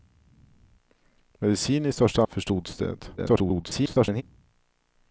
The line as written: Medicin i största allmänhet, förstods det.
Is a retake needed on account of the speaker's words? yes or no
yes